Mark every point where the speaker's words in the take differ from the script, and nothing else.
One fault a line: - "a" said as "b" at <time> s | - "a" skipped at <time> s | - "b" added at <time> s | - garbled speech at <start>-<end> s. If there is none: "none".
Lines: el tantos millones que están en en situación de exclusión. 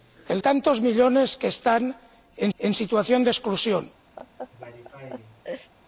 none